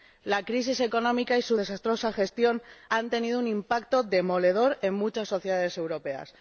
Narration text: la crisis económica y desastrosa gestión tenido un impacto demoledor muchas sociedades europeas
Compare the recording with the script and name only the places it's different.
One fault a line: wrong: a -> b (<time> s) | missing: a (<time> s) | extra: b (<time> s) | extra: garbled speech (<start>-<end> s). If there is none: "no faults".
extra: su (1.4 s)
extra: han (2.9 s)
extra: en (4.8 s)